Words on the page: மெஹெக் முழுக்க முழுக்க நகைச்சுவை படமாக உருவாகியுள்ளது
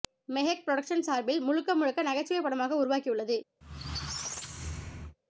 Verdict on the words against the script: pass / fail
fail